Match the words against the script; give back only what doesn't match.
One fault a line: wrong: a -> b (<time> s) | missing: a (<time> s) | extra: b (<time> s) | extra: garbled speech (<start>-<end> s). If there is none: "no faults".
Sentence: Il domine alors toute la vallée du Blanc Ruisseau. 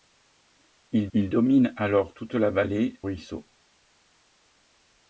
extra: il (1.1 s)
missing: du Blanc (3.0 s)